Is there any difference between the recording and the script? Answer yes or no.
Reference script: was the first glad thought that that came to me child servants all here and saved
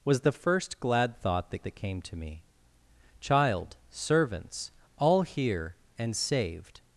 no